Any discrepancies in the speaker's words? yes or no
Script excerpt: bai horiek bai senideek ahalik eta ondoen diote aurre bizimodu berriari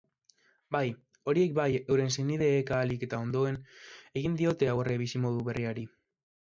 yes